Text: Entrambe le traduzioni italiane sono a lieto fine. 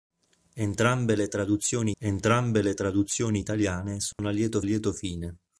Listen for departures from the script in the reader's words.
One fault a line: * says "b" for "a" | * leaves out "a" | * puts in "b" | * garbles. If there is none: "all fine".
* puts in "entrambe le traduzioni"
* puts in "lieto"